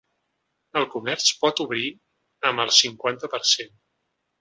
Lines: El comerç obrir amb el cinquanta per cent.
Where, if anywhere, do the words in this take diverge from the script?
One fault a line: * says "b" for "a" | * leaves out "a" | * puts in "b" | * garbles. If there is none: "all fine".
* puts in "pot"